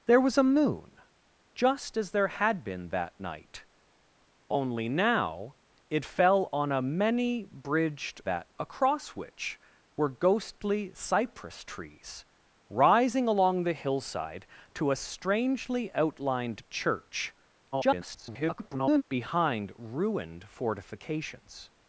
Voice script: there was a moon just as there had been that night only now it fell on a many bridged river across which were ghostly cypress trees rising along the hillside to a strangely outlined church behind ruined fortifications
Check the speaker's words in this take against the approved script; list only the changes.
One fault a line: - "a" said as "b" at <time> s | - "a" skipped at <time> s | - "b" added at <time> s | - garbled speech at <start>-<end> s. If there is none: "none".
- "river" said as "that" at 8.2 s
- garbled speech at 17.7-19.0 s